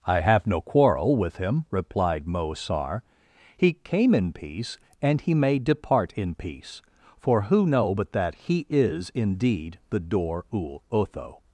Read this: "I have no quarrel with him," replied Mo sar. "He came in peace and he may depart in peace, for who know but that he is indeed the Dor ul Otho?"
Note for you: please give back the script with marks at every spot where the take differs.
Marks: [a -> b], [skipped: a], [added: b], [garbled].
"I have no quarrel with him," replied Mo sar. "He came in peace and he may depart in peace, for who know but that he is indeed the Dor ul Otho?"